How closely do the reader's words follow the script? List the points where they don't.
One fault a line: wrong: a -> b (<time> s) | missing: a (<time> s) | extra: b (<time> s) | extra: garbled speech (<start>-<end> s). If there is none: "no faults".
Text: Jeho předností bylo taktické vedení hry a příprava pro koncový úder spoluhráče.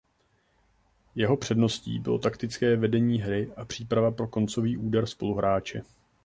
no faults